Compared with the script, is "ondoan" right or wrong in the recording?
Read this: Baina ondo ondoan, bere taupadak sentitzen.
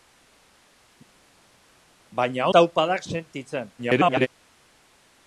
wrong